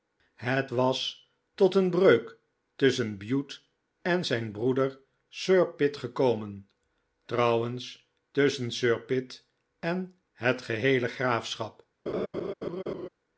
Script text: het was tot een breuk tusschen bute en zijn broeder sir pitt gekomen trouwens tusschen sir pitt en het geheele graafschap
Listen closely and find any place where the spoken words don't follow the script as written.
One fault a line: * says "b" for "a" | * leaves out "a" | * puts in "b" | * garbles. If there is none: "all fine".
all fine